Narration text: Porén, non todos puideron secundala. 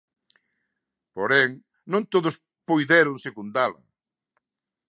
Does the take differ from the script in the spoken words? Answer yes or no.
no